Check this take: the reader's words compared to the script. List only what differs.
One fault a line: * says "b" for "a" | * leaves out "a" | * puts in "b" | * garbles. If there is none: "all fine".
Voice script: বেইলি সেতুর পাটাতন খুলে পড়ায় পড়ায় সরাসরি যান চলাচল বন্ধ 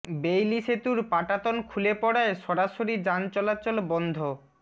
* leaves out "পড়ায়"